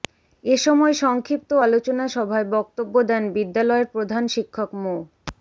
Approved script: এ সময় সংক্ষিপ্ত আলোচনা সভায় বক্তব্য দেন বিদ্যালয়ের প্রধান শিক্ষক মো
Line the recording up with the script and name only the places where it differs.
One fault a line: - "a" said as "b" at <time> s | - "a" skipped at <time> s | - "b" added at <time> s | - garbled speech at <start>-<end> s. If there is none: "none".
none